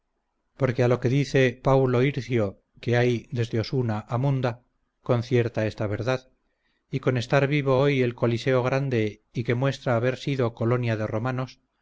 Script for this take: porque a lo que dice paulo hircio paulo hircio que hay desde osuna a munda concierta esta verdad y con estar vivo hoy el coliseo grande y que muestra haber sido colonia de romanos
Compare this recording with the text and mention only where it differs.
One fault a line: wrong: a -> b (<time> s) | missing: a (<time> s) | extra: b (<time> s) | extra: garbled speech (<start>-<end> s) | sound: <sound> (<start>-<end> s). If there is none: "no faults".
missing: paulo hircio (2.5 s)